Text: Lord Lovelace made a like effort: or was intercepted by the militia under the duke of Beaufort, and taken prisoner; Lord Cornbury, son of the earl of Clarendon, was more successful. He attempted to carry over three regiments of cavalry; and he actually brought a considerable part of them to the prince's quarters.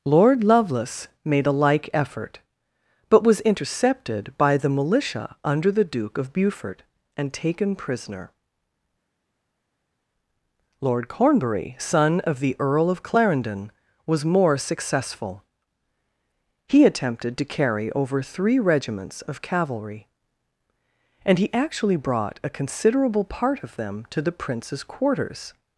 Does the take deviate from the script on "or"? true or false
true